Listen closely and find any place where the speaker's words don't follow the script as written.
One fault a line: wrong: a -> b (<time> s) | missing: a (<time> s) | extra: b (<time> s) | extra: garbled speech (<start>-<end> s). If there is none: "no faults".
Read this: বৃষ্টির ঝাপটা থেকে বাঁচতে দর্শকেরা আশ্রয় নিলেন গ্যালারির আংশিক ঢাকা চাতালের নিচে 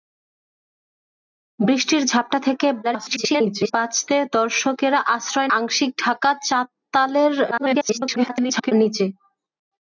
extra: garbled speech (2.8-3.7 s)
missing: নিলেন গ্যালারির (5.5 s)
extra: garbled speech (7.5-8.7 s)